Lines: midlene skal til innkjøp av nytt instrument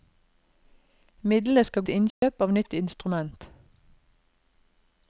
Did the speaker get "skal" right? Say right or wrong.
right